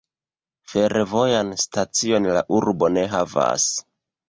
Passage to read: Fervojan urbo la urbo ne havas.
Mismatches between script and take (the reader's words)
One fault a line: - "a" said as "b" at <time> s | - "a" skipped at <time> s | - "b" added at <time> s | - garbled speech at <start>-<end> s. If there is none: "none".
- "urbo" said as "stacion" at 1.6 s